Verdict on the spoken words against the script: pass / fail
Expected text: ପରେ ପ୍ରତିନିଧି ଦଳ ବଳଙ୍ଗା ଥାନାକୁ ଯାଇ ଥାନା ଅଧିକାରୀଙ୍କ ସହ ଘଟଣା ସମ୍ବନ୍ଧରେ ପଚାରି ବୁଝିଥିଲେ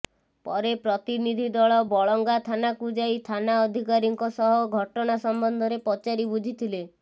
pass